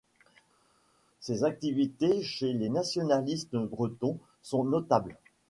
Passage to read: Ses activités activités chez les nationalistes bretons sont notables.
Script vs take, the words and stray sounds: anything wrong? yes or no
yes